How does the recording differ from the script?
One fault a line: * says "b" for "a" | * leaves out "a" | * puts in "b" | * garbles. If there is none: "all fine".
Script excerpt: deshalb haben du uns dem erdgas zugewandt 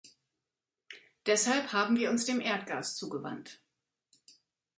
* says "wir" for "du"